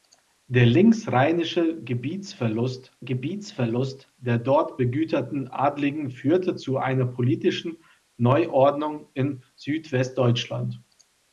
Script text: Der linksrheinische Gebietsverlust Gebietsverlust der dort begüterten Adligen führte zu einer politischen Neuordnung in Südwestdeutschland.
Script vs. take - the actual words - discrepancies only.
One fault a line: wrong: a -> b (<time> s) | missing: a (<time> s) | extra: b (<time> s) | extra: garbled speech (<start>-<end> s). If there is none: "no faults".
no faults